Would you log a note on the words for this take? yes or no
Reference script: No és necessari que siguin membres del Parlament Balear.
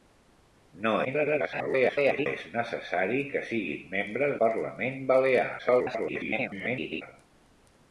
yes